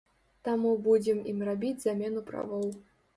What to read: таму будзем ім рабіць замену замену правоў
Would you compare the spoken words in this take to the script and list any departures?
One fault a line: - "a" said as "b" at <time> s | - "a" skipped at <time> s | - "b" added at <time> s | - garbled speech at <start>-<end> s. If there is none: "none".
- "замену" skipped at 2.2 s